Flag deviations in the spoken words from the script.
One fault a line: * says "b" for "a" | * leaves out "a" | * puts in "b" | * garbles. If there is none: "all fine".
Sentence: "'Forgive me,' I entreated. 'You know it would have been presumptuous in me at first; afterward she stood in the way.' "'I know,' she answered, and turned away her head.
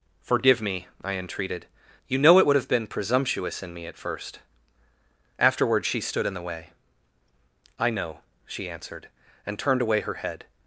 all fine